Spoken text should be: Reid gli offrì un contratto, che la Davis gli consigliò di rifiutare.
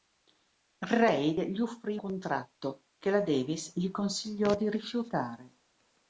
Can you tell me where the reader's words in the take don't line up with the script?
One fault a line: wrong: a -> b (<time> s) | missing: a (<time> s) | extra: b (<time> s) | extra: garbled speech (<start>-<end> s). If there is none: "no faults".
missing: un (2.0 s)